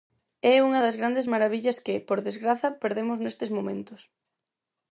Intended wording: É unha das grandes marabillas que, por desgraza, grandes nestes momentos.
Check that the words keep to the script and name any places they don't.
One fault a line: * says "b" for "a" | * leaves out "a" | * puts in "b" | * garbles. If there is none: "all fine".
* says "perdemos" for "grandes"